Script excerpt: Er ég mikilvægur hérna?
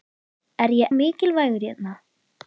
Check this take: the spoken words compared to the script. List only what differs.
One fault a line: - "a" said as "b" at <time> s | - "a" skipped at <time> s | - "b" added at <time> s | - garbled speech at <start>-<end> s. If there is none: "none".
none